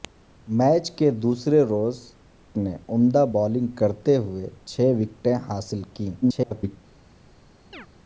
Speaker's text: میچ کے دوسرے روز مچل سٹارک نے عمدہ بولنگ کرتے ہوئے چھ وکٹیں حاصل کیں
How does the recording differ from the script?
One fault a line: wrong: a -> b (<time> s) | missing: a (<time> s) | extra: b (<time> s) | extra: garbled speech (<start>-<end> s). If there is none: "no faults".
missing: مچل سٹارک (2.0 s)
extra: garbled speech (6.2-6.8 s)